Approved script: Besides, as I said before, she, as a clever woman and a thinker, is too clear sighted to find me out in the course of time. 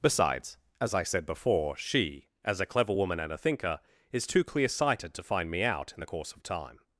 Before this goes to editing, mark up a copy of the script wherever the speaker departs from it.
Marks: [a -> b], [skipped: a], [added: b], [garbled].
Besides, as I said before, she, as a clever woman and a thinker, is too clear sighted to find me out in the course of time.